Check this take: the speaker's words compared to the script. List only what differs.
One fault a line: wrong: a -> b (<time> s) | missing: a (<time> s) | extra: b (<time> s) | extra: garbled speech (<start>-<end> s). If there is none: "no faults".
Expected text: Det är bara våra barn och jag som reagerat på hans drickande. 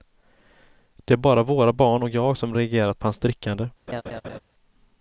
no faults